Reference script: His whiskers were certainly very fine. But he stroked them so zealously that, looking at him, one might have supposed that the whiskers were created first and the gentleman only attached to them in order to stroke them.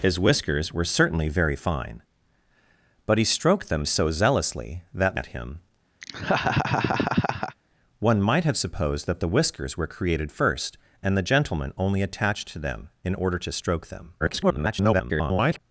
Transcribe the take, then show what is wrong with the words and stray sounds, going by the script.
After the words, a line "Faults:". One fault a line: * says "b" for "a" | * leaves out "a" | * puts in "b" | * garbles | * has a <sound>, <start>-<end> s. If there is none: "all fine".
His whiskers were certainly very fine. But he stroked them so zealously that, at him, one might have supposed that the whiskers were created first and the gentleman only attached to them in order to stroke them. [garbled]
Faults:
* leaves out "looking"
* has a laugh, 6.0-7.6 s
* garbles